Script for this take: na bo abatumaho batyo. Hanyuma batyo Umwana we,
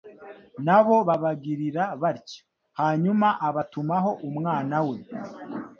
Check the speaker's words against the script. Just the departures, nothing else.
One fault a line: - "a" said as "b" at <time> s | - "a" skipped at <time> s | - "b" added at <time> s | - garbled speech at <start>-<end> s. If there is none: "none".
- "abatumaho" said as "babagirira" at 1.1 s
- "batyo" said as "abatumaho" at 3.5 s